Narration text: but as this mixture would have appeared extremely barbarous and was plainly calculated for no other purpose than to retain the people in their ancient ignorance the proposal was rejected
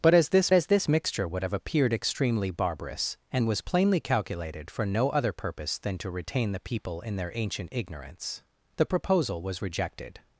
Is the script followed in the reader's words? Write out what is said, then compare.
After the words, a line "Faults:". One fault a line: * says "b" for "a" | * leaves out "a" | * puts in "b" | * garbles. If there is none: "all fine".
but as this as this mixture would have appeared extremely barbarous and was plainly calculated for no other purpose than to retain the people in their ancient ignorance the proposal was rejected
Faults:
* puts in "as this"